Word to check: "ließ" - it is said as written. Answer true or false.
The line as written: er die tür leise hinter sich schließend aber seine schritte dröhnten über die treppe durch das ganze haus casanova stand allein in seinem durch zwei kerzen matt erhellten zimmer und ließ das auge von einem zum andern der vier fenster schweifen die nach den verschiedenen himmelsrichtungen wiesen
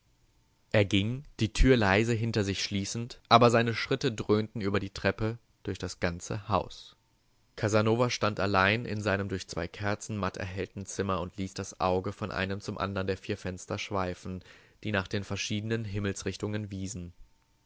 true